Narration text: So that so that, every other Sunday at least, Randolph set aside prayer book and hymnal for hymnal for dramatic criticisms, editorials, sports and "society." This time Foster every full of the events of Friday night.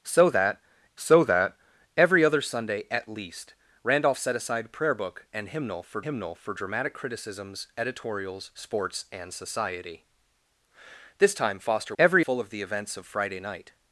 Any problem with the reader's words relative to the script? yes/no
no